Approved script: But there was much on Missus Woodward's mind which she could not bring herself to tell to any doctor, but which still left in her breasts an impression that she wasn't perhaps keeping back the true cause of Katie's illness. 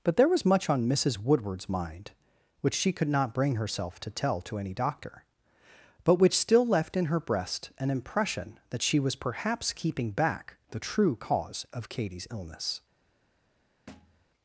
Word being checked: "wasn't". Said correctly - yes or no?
no